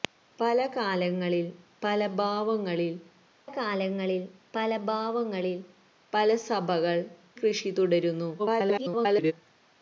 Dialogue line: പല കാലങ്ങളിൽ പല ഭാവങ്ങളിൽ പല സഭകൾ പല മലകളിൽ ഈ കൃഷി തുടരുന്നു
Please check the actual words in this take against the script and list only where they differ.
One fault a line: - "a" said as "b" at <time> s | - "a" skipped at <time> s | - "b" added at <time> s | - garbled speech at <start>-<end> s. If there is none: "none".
- "കാലങ്ങളിൽ" added at 3.5 s
- "സഭകൾ" said as "ഭാവങ്ങളിൽ" at 4.8 s
- "മലകളിൽ ഈ" said as "സഭകൾ" at 6.4 s
- garbled speech at 8.4-9.3 s